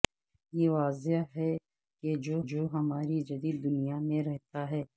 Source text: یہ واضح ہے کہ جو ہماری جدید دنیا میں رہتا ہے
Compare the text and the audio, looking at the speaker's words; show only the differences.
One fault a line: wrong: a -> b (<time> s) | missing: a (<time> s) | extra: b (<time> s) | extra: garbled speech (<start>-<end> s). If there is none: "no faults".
extra: جو (2.4 s)